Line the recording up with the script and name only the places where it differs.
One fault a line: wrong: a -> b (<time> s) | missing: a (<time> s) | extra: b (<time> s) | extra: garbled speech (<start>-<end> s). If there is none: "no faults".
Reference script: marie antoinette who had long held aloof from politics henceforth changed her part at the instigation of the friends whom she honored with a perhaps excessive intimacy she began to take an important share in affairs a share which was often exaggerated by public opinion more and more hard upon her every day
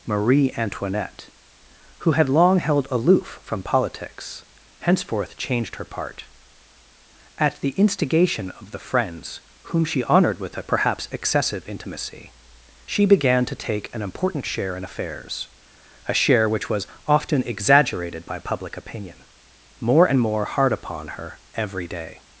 no faults